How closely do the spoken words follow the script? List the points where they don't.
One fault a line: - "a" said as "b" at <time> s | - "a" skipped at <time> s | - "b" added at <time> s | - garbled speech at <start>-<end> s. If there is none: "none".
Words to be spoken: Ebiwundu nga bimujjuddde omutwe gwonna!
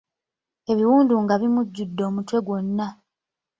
none